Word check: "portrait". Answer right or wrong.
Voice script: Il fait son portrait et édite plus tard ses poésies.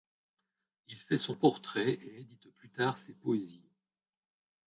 right